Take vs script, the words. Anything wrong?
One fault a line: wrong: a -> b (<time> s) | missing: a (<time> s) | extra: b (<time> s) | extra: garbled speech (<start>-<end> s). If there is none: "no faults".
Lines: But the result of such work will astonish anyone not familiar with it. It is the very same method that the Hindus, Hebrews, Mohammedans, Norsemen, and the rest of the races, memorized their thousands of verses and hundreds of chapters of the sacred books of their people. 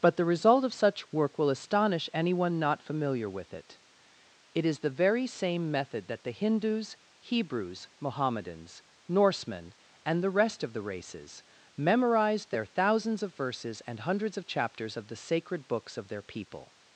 no faults